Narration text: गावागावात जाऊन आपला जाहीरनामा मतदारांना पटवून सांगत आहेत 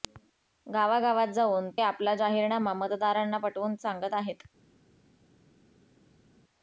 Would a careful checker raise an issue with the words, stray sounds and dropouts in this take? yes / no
no